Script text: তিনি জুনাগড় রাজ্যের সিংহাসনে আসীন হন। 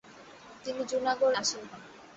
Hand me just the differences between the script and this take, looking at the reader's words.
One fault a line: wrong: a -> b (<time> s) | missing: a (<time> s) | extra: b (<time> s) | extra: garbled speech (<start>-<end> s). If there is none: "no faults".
missing: রাজ্যের সিংহাসনে (1.4 s)